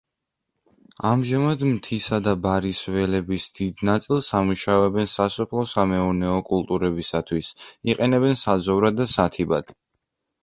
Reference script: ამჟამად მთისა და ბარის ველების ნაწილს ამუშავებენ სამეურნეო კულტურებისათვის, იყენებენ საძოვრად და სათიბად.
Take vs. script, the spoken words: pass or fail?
fail